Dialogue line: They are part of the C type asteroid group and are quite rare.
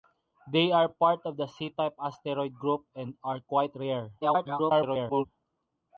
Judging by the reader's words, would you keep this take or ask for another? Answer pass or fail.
fail